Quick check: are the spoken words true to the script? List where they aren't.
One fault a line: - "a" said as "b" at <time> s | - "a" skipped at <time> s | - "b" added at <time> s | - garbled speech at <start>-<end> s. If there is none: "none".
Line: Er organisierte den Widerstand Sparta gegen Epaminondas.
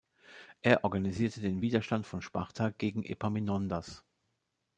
- "von" added at 2.1 s